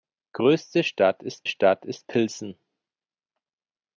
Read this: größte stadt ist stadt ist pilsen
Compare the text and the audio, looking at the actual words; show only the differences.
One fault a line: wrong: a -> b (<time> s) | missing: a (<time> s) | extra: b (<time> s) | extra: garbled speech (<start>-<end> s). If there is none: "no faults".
no faults